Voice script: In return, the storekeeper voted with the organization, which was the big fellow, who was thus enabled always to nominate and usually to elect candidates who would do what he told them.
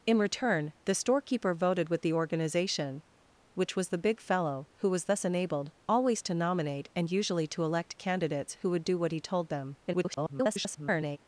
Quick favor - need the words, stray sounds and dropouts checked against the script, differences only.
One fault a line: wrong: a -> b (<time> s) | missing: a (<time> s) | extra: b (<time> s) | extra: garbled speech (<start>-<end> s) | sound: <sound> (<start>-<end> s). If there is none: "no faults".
extra: garbled speech (9.9-11.2 s)